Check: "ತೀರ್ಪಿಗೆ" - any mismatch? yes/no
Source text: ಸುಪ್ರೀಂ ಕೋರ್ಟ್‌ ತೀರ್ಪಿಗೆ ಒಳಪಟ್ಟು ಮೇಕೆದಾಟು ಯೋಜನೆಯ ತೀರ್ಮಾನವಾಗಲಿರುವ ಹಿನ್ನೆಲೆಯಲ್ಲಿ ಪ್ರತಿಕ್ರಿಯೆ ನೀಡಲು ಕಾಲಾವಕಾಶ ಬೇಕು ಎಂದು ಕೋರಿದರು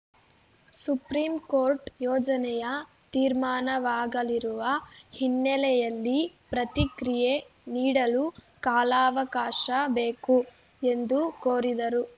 yes